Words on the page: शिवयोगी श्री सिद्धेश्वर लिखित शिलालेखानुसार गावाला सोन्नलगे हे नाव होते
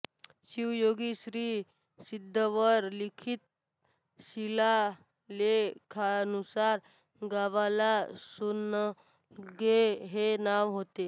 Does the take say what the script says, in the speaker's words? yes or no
yes